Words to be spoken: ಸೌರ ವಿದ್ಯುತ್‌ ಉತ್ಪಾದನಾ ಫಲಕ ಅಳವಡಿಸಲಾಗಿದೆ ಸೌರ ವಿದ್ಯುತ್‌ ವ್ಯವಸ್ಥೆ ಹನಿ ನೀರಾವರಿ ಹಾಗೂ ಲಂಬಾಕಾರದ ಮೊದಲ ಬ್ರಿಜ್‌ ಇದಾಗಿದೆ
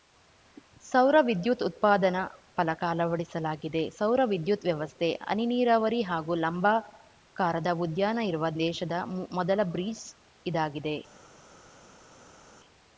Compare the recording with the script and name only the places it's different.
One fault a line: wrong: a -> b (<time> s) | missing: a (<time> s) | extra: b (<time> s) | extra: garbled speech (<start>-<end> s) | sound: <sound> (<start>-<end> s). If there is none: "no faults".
extra: ಉದ್ಯಾನ ಇರುವ ದೇಶದ (7.8 s)